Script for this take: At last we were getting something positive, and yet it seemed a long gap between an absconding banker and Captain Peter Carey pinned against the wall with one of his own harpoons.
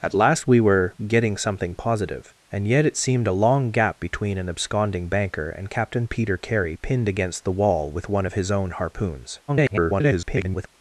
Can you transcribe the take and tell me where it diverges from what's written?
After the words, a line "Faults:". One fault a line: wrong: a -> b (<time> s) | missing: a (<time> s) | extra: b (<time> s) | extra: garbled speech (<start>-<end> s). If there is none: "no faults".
At last we were getting something positive, and yet it seemed a long gap between an absconding banker and Captain Peter Carey pinned against the wall with one of his own harpoons. [garbled]
Faults:
extra: garbled speech (9.5-10.7 s)